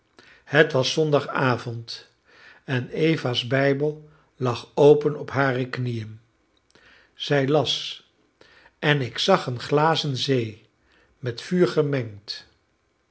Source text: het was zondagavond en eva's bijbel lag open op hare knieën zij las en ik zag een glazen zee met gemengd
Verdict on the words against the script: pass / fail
fail